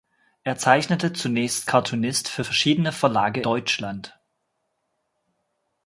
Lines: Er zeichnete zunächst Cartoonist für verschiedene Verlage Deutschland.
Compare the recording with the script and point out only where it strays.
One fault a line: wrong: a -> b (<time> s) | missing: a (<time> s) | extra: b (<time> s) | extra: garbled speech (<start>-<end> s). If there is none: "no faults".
no faults